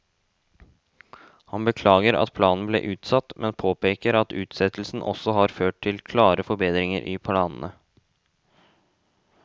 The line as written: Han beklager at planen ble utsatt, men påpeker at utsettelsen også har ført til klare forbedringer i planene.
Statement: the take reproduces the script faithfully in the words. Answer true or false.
true